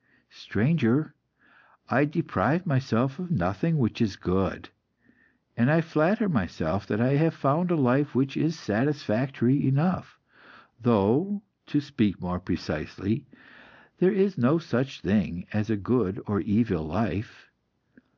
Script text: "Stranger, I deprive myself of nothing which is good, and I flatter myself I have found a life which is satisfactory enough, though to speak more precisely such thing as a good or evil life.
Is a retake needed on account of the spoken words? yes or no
yes